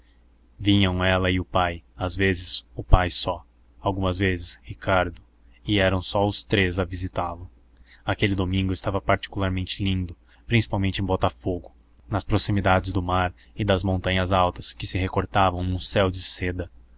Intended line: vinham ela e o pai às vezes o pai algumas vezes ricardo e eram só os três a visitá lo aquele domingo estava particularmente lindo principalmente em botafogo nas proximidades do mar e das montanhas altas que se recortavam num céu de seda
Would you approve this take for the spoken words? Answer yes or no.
no